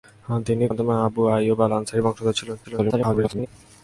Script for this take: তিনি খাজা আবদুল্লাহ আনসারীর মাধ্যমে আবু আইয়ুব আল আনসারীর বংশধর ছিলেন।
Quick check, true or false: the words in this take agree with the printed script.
false